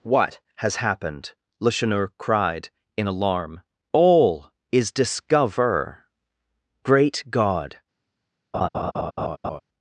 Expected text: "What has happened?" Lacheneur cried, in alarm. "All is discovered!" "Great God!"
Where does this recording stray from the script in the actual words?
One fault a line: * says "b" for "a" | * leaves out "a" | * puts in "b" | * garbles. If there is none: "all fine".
* says "discover" for "discovered"